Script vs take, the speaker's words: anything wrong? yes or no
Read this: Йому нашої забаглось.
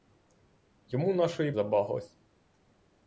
no